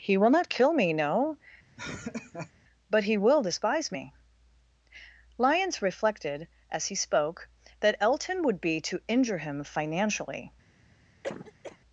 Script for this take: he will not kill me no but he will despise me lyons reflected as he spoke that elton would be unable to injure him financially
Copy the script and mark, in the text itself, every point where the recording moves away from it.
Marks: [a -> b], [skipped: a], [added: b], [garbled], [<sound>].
he will not kill me no [laugh] but he will despise me lyons reflected as he spoke that elton would be [skipped: unable] to injure him financially [cough]